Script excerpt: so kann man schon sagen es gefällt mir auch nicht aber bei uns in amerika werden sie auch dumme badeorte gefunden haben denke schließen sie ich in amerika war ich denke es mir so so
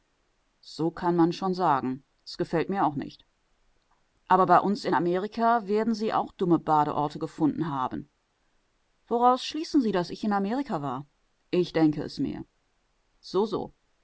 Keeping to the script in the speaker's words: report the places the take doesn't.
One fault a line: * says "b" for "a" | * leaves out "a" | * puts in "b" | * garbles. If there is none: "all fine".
* says "woraus" for "denke"
* puts in "daß"